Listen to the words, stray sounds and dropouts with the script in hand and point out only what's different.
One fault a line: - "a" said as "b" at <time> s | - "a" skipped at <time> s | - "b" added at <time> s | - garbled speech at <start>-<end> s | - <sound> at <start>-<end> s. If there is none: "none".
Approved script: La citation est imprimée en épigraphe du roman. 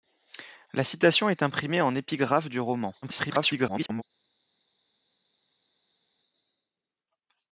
- garbled speech at 3.0-4.0 s